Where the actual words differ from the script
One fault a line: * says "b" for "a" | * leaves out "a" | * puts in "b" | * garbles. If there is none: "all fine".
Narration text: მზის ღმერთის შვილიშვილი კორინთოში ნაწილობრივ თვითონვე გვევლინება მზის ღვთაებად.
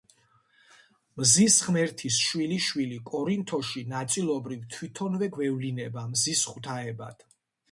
all fine